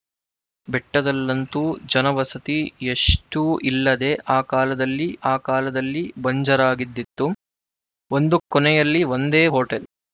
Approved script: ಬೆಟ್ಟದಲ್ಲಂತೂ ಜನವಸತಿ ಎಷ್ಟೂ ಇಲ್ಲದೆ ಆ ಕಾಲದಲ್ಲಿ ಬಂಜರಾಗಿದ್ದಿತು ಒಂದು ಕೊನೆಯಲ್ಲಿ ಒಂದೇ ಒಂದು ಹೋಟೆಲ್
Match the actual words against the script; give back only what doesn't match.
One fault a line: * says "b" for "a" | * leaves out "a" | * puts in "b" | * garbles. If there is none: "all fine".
* puts in "ಆ ಕಾಲದಲ್ಲಿ"
* leaves out "ಒಂದು"